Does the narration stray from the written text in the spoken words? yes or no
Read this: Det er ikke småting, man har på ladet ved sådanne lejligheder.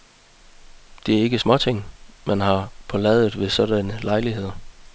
no